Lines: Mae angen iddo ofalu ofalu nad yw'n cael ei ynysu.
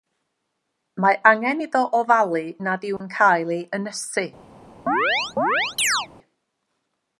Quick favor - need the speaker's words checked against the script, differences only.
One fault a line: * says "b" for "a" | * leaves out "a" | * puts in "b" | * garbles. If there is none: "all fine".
* leaves out "ofalu"